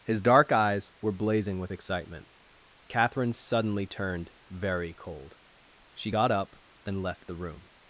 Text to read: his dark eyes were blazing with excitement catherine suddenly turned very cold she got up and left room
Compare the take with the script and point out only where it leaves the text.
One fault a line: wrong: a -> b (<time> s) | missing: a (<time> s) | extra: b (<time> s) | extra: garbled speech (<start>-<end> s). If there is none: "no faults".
extra: the (7.3 s)